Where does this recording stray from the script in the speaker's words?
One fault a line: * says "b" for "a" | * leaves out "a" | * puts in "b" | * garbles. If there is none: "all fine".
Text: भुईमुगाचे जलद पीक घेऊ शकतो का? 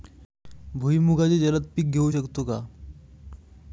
all fine